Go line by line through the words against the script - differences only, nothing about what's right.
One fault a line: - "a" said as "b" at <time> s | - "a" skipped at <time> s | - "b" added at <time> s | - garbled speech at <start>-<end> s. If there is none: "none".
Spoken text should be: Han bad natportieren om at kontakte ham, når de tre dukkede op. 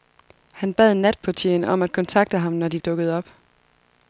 - "tre" skipped at 2.8 s